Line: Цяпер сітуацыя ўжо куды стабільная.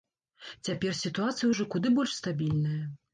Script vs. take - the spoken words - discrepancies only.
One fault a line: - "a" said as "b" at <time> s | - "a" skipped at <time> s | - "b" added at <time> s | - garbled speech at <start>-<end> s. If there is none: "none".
- "больш" added at 2.0 s